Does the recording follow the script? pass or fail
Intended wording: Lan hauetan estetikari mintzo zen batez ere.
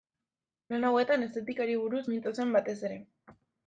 fail